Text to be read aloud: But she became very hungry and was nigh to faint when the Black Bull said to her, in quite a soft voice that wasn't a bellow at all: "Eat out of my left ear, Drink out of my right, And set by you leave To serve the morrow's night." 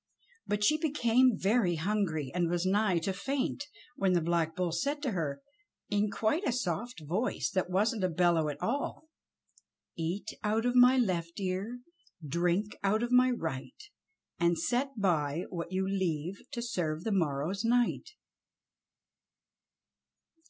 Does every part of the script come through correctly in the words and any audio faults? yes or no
no